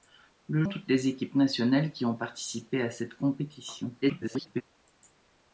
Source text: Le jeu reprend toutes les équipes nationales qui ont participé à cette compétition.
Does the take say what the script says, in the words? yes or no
no